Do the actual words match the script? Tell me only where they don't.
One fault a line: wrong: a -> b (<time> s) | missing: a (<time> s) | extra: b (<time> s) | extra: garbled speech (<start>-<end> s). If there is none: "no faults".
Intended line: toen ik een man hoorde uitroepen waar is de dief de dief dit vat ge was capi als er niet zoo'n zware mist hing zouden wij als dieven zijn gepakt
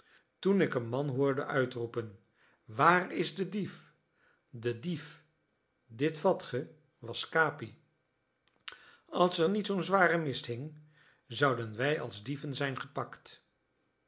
no faults